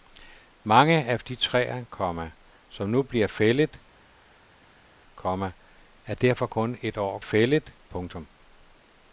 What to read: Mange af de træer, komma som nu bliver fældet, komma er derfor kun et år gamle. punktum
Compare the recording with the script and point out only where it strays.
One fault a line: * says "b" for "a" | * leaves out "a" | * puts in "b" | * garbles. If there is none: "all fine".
* says "fældet" for "gamle"